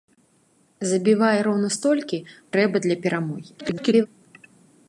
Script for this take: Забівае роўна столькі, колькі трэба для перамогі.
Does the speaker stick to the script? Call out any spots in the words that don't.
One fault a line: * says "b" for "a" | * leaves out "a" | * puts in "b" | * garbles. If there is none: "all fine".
* leaves out "колькі"
* garbles